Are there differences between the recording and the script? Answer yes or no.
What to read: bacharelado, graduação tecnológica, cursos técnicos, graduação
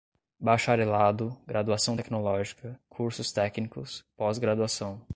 yes